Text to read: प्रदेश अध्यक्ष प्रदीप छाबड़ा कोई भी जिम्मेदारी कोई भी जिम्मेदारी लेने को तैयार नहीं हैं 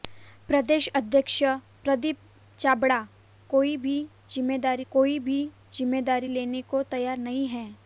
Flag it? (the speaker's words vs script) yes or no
no